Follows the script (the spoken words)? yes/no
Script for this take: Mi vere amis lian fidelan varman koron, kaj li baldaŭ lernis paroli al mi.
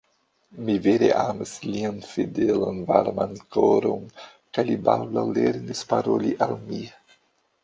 yes